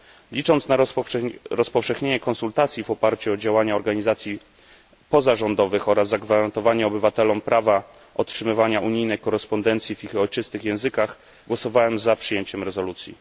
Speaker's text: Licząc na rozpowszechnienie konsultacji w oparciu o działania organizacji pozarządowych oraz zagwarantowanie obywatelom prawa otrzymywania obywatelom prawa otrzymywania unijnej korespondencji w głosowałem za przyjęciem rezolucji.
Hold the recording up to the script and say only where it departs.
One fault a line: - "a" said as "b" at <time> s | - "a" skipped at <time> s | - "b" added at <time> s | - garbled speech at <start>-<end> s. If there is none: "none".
- "obywatelom prawa otrzymywania unijnej korespondencji w" said as "unijnej korespondencji w ich ojczystych językach" at 8.8 s